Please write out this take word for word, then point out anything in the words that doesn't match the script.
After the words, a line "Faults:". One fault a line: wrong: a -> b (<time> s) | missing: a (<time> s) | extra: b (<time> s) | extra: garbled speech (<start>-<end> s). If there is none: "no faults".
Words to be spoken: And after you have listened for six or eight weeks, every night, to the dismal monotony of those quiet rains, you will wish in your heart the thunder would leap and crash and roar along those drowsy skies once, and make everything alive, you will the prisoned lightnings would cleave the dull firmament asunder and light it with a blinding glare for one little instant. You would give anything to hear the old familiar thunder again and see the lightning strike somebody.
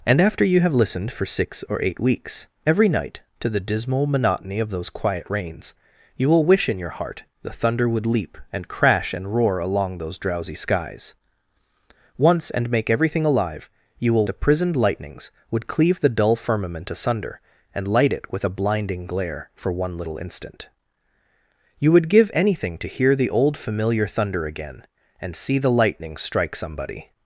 And after you have listened for six or eight weeks, every night, to the dismal monotony of those quiet rains, you will wish in your heart the thunder would leap and crash and roar along those drowsy skies once, and make everything alive, you will the prisoned lightnings would cleave the dull firmament asunder and light it with a blinding glare for one little instant. You would give anything to hear the old familiar thunder again and see the lightning strike somebody.
Faults:
no faults